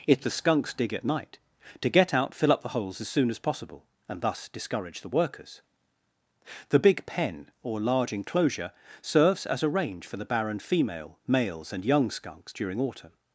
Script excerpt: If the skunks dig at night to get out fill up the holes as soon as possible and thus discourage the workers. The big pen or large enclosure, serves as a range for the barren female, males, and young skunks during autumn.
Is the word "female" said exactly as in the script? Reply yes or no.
yes